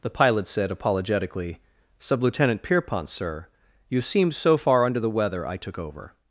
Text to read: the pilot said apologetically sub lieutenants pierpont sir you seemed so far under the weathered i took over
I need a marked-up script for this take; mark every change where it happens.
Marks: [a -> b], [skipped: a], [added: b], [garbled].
the pilot said apologetically sub [lieutenants -> lieutenant] pierpont sir you seemed so far under the [weathered -> weather] i took over